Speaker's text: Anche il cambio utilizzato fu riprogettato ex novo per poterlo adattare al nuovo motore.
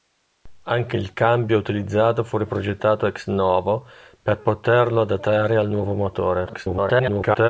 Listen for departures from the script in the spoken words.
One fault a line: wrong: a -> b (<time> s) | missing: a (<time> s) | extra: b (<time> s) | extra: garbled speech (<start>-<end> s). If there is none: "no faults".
extra: garbled speech (6.5-7.5 s)